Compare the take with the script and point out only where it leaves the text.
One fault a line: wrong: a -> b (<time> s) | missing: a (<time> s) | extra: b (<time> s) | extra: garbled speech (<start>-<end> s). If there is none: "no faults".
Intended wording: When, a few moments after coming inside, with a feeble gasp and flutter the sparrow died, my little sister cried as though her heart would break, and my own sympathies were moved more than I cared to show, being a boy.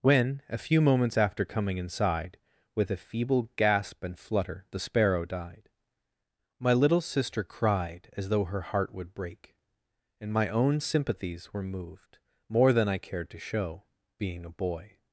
no faults